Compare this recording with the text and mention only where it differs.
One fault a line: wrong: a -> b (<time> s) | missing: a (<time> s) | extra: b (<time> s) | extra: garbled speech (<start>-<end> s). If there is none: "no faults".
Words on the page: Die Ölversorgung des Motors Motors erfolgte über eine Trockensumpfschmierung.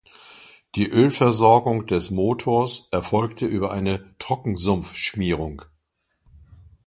missing: Motors (2.9 s)